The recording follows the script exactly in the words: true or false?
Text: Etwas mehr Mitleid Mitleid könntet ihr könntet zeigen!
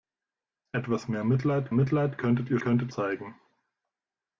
true